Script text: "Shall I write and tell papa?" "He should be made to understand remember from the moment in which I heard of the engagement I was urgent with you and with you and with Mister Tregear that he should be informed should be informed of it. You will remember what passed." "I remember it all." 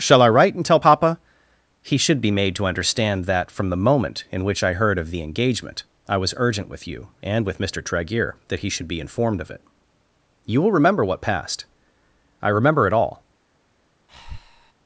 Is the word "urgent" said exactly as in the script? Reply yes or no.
yes